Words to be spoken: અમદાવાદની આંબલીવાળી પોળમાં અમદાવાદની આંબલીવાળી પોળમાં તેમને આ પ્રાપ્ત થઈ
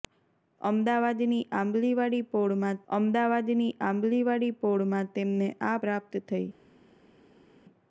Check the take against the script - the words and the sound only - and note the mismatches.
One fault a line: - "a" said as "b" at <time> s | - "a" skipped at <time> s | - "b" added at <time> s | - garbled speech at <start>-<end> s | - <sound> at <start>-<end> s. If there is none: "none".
none